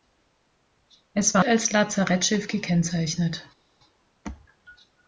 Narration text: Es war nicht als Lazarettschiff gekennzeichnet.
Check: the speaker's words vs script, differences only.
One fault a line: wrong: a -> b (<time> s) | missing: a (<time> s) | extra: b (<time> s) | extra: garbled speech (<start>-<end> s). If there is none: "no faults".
missing: nicht (1.4 s)